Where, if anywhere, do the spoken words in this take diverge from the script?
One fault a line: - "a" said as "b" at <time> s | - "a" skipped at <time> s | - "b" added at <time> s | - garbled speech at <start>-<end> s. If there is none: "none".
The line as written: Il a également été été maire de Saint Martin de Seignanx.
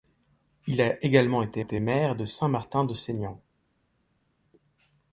none